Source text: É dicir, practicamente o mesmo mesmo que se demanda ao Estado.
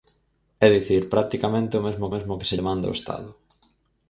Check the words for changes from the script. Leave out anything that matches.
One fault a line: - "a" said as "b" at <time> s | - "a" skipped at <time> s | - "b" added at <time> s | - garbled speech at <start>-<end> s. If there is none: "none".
none